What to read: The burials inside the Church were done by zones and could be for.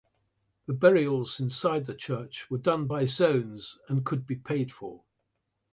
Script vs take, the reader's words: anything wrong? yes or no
yes